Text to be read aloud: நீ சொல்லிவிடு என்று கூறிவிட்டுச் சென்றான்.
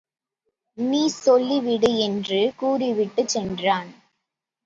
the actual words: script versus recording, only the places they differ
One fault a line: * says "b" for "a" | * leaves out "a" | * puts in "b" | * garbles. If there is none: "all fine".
all fine